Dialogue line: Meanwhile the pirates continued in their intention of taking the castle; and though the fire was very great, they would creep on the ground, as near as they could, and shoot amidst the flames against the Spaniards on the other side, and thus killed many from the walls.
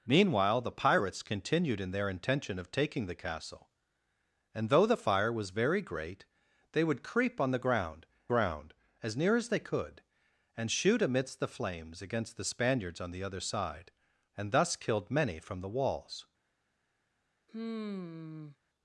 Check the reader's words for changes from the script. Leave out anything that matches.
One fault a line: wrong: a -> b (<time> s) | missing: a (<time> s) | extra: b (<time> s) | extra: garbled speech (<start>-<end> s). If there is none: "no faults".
extra: ground (8.3 s)